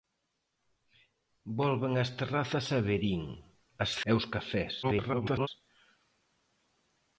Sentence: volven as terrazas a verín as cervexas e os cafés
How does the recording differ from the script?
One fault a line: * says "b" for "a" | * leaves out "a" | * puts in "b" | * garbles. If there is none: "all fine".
* leaves out "cervexas"
* garbles